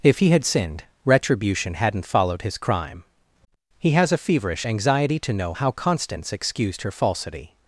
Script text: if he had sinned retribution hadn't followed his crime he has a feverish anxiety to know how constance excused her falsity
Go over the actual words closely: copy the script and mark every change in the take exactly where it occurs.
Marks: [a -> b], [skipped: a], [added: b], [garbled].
if he had sinned retribution hadn't followed his crime he has a feverish anxiety to know how constance excused her falsity